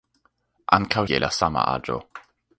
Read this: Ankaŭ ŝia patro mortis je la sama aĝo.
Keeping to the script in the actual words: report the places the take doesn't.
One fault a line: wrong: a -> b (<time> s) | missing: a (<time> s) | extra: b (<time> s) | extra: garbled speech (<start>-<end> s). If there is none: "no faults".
missing: ŝia patro mortis (1.0 s)